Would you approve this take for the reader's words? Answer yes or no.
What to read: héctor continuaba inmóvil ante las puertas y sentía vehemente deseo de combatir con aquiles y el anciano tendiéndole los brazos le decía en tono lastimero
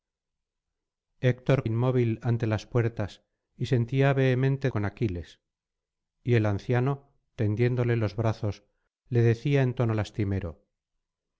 no